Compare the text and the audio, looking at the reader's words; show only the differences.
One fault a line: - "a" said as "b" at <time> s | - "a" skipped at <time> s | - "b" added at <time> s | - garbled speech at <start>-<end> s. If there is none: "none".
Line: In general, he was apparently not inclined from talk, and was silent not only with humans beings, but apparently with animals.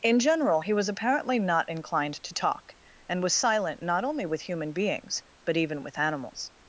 - "from" said as "to" at 2.2 s
- "humans" said as "human" at 4.4 s
- "apparently" said as "even" at 5.6 s